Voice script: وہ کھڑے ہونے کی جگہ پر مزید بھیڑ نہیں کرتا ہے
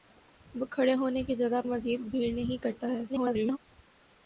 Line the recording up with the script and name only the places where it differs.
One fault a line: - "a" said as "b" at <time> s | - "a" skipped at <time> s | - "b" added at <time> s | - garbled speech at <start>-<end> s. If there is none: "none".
- "پر" skipped at 1.6 s
- garbled speech at 3.1-3.6 s